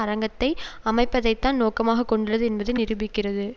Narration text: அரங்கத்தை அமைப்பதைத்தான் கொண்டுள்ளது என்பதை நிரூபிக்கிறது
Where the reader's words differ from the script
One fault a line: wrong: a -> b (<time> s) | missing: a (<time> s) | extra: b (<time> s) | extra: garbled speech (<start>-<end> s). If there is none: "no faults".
extra: நோக்கமாக (1.6 s)